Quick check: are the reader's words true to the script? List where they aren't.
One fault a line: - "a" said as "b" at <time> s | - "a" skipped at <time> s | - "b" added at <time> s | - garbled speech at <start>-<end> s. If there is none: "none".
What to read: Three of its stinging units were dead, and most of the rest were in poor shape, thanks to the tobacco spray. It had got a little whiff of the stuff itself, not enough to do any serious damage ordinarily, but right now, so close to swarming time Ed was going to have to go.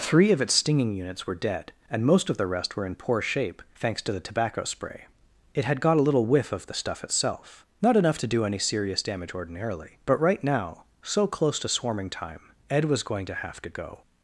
none